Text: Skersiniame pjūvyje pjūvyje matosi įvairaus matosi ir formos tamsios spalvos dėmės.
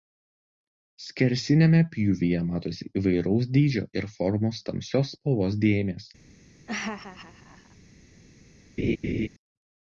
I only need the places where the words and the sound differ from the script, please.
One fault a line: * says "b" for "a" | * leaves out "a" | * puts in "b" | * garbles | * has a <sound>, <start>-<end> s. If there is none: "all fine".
* leaves out "pjūvyje"
* says "dydžio" for "matosi"
* has a laugh, 6.7-7.8 s
* has a laugh, 8.8-9.3 s